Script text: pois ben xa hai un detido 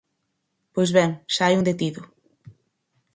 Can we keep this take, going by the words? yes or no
yes